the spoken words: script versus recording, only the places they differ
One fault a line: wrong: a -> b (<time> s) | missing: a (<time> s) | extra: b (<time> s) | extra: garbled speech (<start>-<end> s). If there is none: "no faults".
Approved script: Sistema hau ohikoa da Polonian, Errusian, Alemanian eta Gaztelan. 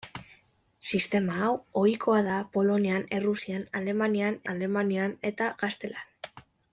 extra: Alemanian (4.5 s)